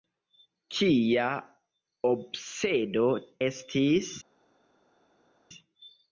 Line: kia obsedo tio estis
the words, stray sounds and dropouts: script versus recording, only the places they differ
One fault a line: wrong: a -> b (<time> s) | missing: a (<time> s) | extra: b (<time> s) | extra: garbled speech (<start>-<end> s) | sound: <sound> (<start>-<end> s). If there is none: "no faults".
missing: tio (3.0 s)